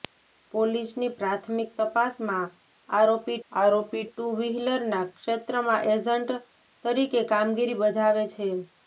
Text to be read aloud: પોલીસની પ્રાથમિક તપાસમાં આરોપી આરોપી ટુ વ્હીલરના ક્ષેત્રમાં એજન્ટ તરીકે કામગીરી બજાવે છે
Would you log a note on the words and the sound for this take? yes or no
no